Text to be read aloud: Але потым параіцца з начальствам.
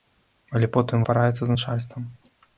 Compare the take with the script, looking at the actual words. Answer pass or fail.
pass